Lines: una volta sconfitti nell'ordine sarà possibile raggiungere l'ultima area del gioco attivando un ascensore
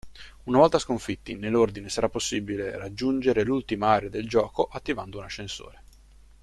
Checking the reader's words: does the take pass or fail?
pass